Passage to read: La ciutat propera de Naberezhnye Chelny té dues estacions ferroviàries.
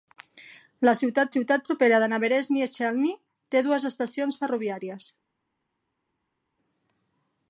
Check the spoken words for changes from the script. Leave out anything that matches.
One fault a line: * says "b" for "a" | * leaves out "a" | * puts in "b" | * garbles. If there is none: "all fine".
* puts in "ciutat"